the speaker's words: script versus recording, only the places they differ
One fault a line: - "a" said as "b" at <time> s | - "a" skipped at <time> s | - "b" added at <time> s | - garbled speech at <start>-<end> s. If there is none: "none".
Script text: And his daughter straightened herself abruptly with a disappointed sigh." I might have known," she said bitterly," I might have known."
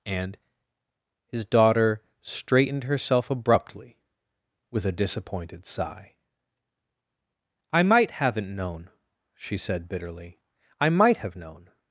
- "have" said as "haven't" at 8.1 s